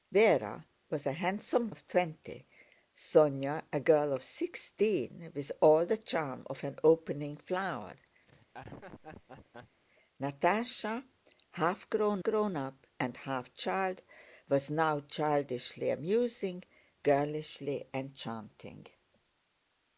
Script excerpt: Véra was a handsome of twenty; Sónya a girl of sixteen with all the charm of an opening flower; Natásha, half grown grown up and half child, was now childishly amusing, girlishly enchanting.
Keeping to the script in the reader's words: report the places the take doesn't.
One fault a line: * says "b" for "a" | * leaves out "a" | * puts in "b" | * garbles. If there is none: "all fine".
all fine